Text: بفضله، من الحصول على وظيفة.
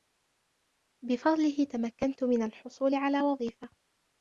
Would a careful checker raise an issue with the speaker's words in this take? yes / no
yes